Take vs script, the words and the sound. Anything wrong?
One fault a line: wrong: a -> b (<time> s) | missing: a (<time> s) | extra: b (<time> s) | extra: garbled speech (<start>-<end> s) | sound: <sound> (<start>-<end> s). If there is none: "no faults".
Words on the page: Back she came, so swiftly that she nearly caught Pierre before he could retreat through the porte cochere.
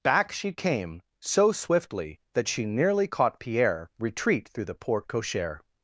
missing: before he could (3.9 s)